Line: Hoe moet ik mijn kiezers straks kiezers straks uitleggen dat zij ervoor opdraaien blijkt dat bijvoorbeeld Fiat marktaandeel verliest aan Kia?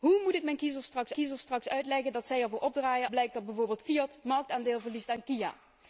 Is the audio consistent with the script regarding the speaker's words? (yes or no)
yes